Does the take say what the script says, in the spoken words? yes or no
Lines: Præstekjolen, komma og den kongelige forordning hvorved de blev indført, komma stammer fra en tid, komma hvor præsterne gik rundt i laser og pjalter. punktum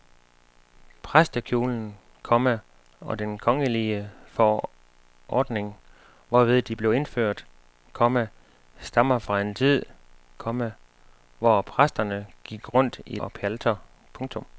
no